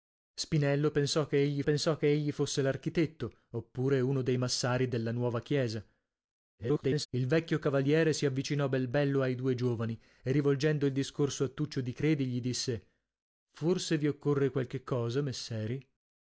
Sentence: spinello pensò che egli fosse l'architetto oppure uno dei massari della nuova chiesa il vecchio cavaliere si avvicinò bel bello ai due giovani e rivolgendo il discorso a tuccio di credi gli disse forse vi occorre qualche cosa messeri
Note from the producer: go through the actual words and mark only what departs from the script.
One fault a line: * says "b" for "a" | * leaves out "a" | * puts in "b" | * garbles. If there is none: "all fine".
* puts in "pensò che egli"
* garbles